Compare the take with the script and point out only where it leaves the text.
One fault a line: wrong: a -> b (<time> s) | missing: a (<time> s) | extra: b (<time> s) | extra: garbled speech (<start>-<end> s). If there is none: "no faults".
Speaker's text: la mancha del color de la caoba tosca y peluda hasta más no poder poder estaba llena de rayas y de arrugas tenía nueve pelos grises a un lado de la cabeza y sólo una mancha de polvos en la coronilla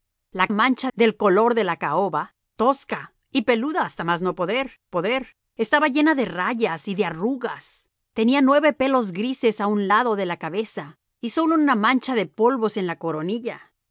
no faults